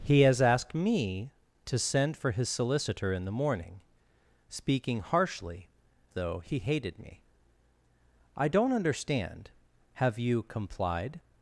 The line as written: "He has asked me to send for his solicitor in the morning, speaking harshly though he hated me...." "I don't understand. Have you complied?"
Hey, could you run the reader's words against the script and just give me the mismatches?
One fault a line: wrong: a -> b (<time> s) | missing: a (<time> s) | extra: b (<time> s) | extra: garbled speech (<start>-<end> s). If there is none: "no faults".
no faults